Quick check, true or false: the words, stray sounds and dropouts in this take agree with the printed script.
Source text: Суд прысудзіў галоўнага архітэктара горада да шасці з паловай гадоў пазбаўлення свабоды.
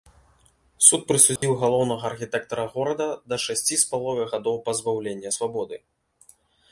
false